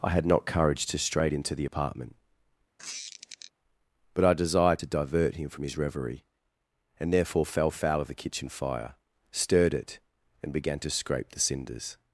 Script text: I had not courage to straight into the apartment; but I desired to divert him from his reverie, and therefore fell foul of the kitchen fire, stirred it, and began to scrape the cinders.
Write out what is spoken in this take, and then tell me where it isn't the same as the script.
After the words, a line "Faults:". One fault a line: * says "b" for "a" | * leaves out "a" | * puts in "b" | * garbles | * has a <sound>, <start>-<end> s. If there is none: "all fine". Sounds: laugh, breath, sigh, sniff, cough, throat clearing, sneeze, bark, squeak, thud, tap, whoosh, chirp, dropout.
I had not courage to straight into the apartment; but I desired to divert him from his reverie, and therefore fell foul of the kitchen fire, stirred it, and began to scrape the cinders.
Faults:
* has a squeak, 2.8-3.5 s